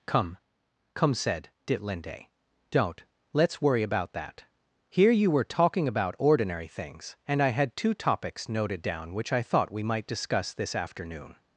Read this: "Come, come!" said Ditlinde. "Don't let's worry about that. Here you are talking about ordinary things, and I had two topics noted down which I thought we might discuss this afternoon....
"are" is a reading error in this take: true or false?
true